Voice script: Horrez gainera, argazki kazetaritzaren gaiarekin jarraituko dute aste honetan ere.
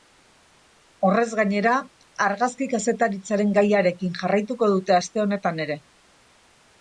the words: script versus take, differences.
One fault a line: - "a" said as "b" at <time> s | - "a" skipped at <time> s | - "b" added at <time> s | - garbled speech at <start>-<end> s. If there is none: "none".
none